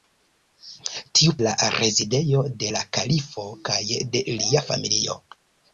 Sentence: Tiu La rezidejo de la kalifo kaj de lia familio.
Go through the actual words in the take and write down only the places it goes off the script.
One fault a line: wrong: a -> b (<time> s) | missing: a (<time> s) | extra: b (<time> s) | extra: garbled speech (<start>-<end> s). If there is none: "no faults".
no faults